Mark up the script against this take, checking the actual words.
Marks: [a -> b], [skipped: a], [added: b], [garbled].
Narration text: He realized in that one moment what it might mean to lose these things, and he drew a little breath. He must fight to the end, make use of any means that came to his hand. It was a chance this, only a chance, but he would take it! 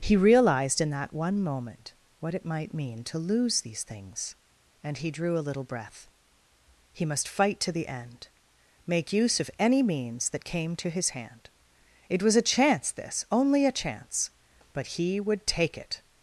He realized in that one moment what it might mean to lose these things, and he drew a little breath. He must fight to the end, make use of any means that came to his hand. It was a chance this, only a chance, but he would take it!